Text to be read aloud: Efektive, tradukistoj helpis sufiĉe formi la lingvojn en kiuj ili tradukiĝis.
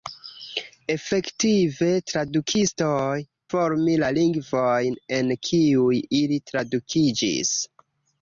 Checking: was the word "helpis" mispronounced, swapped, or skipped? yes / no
yes